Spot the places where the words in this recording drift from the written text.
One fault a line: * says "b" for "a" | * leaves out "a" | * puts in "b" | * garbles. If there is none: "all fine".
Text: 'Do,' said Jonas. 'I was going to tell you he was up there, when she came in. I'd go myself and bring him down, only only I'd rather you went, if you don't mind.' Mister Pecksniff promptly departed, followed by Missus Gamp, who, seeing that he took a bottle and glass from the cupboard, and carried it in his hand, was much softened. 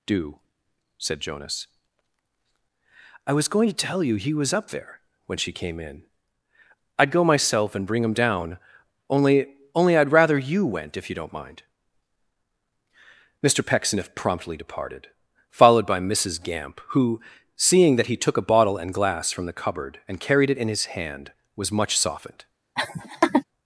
all fine